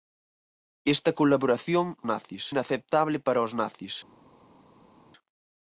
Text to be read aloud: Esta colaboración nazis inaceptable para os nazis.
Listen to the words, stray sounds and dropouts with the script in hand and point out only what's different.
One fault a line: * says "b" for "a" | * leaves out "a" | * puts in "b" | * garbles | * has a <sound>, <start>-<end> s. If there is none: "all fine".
all fine